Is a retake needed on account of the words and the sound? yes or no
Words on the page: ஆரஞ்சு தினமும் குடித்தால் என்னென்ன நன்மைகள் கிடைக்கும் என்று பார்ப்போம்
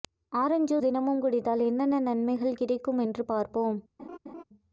yes